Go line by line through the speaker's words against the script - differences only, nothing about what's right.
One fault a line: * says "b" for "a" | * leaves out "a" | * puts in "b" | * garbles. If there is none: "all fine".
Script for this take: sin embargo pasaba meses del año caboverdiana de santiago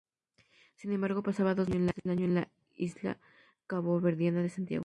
* puts in "dos"
* puts in "en la isla"